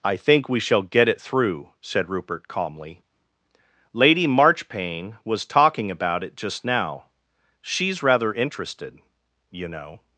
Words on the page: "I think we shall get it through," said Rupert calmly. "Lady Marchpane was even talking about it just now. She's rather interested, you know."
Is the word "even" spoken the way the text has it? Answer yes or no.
no